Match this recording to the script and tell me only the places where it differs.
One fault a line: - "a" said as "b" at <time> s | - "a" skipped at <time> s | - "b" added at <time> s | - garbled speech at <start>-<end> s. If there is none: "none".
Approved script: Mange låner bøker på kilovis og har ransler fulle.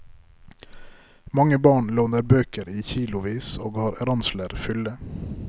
- "barn" added at 1.6 s
- "på" said as "i" at 2.7 s